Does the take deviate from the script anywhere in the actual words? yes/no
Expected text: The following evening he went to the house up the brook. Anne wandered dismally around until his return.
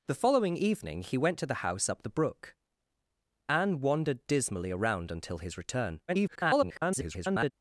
yes